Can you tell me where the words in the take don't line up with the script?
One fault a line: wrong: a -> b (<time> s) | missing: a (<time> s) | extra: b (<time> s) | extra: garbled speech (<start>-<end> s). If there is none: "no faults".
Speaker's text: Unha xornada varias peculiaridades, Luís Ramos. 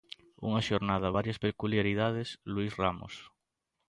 no faults